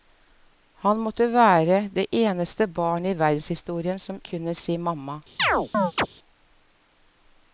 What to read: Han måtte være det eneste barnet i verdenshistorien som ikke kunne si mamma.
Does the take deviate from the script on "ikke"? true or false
true